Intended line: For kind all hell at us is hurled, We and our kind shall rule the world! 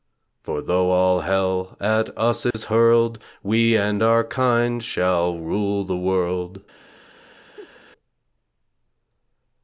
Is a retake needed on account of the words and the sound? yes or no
yes